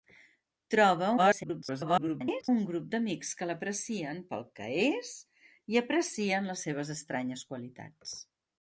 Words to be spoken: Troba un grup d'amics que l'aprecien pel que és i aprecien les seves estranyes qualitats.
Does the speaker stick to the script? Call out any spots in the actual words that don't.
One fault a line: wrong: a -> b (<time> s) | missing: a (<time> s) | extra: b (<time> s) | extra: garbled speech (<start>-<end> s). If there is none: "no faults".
extra: garbled speech (1.2-2.5 s)